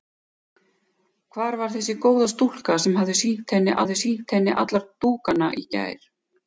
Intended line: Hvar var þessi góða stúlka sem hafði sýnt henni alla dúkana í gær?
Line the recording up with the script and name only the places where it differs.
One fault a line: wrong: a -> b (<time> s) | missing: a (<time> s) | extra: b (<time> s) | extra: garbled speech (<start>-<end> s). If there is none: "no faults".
extra: hafði sýnt henni (3.8 s)